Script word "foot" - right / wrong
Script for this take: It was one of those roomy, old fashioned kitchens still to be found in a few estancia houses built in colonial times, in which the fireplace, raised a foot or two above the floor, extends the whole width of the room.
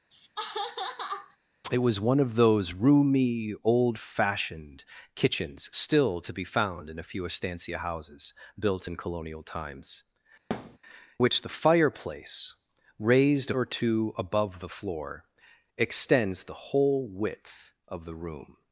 wrong